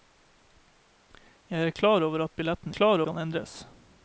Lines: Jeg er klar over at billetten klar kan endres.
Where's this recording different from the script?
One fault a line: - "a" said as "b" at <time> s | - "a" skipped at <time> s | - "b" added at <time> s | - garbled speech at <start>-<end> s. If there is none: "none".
none